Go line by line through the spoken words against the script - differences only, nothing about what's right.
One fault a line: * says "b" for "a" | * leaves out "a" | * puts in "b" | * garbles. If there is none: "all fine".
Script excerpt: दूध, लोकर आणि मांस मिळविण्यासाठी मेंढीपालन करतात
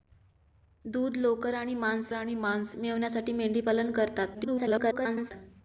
* puts in "आणि मांस"
* garbles